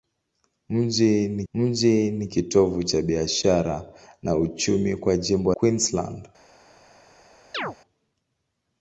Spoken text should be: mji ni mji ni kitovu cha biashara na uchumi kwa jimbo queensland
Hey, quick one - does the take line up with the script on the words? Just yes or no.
yes